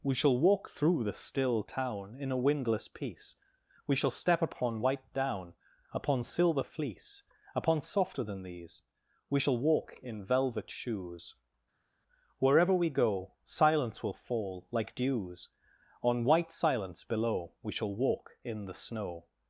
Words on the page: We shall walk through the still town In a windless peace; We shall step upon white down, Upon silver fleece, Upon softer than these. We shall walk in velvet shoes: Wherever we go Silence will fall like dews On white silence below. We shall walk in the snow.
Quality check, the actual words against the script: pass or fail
pass